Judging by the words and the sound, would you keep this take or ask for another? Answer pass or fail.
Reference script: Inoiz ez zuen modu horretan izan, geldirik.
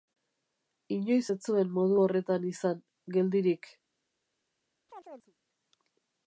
fail